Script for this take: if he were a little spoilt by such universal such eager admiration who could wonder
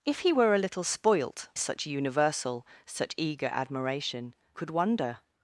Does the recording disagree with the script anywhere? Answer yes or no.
yes